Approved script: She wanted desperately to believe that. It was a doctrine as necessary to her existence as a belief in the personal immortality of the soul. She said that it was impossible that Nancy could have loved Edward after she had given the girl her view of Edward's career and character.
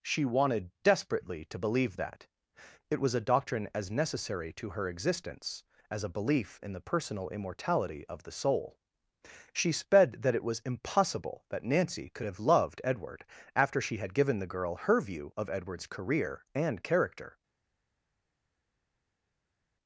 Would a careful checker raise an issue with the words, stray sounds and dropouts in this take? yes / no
yes